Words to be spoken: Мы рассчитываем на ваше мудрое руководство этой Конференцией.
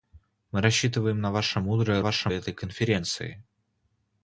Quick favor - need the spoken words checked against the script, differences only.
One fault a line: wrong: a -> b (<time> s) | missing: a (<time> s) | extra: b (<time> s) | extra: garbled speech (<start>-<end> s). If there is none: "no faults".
wrong: руководство -> ваше (2.0 s)